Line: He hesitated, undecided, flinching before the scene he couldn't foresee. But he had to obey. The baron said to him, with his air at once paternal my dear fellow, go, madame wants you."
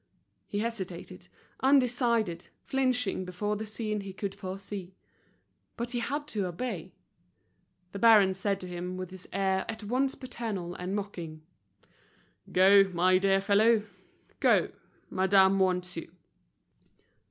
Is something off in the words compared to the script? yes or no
yes